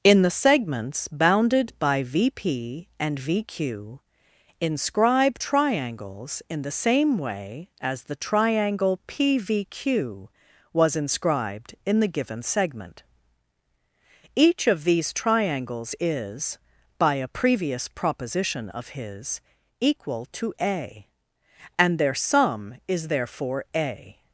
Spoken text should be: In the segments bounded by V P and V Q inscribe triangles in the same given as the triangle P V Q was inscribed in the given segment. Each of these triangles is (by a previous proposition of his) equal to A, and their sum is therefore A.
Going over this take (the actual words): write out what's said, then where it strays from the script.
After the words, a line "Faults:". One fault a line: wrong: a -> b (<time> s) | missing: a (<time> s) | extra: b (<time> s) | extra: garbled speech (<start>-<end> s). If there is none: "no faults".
In the segments bounded by V P and V Q inscribe triangles in the same way as the triangle P V Q was inscribed in the given segment. Each of these triangles is (by a previous proposition of his) equal to A, and their sum is therefore A.
Faults:
wrong: given -> way (7.2 s)